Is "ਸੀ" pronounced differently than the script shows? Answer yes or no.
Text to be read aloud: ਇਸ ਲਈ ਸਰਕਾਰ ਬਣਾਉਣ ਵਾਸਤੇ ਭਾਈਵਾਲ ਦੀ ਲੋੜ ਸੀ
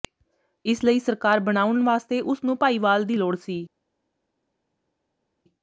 no